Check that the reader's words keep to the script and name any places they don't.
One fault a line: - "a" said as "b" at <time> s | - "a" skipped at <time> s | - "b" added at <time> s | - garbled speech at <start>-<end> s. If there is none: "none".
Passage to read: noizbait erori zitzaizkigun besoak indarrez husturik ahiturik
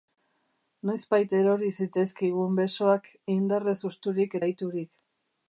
none